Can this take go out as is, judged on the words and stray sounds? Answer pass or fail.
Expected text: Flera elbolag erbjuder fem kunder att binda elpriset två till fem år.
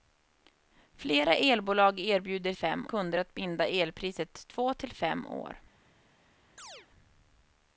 fail